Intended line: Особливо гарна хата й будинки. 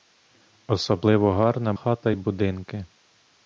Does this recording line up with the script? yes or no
yes